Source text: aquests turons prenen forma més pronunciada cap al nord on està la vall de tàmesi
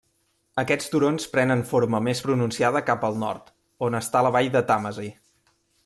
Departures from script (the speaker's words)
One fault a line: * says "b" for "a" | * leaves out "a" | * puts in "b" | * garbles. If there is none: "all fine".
all fine